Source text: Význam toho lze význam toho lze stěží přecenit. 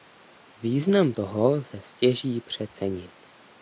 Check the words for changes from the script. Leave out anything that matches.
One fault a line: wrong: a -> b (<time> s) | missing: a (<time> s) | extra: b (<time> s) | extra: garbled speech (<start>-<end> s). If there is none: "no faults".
missing: význam toho lze (1.8 s)